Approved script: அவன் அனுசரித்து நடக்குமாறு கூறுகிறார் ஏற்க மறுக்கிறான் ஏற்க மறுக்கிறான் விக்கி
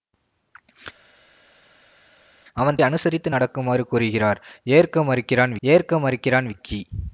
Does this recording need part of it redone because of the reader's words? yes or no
no